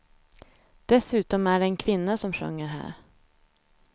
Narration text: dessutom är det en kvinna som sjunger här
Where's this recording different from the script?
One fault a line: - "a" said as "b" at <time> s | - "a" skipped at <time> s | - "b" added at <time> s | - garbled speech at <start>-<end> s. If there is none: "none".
none